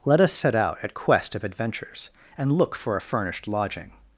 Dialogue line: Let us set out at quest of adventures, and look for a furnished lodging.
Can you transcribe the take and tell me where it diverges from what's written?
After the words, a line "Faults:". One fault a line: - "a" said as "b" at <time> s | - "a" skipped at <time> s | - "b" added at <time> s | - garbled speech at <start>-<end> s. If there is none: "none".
Let us set out at quest of adventures, and look for a furnished lodging.
Faults:
none